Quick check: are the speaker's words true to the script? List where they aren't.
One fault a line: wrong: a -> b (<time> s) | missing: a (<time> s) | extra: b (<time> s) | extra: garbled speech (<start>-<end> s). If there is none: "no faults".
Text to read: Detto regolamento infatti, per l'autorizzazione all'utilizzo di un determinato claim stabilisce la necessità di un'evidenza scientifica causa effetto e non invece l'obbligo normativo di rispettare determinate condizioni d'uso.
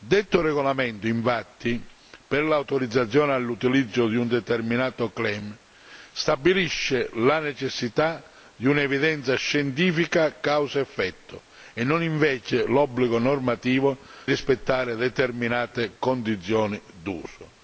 missing: di (14.0 s)